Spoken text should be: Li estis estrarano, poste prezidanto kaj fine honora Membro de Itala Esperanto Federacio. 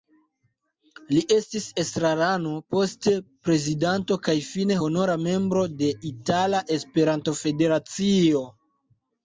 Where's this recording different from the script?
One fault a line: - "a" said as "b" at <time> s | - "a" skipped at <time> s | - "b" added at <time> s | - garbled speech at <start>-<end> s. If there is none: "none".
none